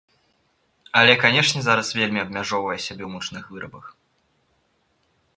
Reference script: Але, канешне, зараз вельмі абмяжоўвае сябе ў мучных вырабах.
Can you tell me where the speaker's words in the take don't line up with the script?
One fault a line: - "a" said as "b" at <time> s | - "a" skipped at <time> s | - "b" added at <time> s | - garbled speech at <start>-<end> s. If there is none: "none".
none